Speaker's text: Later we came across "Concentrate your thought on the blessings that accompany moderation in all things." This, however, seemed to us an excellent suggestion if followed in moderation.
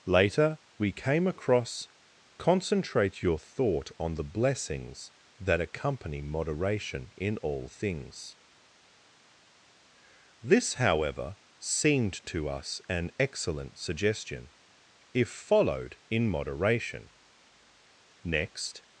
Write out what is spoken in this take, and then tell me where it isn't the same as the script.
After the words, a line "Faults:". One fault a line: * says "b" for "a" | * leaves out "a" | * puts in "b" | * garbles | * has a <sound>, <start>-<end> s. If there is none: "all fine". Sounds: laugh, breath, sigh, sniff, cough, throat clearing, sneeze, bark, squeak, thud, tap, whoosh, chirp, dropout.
Later we came across "Concentrate your thought on the blessings that accompany moderation in all things." This, however, seemed to us an excellent suggestion if followed in moderation. Next
Faults:
* puts in "Next"